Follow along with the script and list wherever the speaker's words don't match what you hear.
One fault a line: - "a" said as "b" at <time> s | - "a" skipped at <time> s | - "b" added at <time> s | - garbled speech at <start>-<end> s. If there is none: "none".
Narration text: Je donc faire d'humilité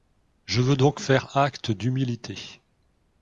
- "veux" added at 0.6 s
- "acte" added at 1.4 s